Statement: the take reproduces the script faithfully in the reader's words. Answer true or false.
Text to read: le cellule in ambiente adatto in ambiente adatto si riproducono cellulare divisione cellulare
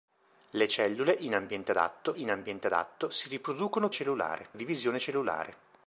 true